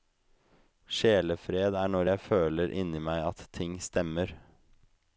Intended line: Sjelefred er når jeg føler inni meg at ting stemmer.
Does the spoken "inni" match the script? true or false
true